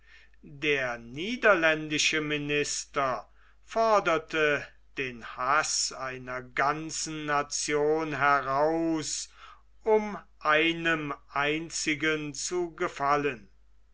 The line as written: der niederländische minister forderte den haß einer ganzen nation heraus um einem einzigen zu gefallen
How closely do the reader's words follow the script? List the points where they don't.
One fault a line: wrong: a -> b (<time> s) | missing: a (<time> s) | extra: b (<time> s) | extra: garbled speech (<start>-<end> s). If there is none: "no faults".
no faults